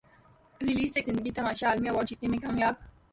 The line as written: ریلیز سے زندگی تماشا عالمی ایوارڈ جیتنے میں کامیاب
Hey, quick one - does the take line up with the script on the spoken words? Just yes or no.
yes